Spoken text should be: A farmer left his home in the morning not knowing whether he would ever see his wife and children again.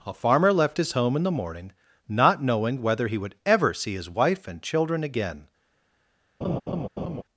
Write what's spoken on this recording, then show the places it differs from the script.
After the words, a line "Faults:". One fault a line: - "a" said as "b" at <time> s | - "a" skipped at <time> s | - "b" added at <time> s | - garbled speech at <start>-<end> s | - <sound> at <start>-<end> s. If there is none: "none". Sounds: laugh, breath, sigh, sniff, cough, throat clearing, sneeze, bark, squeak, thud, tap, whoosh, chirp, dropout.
A farmer left his home in the morning not knowing whether he would ever see his wife and children again.
Faults:
- laugh at 6.4-7.2 s